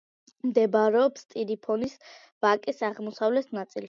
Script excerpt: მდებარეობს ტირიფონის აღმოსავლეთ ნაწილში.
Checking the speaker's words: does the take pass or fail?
fail